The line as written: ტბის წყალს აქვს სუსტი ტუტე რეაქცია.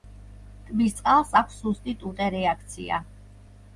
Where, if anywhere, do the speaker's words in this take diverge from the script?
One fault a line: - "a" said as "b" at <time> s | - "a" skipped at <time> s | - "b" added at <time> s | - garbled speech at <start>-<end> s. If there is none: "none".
none